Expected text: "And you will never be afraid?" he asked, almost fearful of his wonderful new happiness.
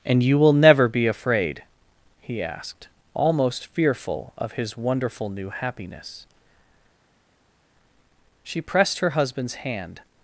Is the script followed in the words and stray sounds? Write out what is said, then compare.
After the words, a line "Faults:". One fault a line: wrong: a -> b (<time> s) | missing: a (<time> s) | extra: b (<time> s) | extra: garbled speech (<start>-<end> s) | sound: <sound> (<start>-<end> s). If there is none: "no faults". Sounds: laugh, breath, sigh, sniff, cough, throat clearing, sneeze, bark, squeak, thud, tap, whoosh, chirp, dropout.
"And you will never be afraid?" he asked, almost fearful of his wonderful new happiness. She pressed her husband's hand
Faults:
extra: She pressed her husband's hand (8.4 s)